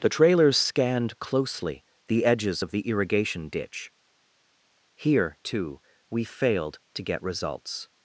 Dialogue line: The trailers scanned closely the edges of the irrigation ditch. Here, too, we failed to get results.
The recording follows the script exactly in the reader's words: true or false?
true